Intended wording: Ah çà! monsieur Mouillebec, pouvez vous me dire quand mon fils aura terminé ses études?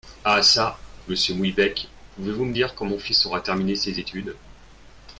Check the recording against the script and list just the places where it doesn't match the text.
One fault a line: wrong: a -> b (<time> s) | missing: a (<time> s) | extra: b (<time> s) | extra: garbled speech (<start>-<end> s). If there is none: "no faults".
no faults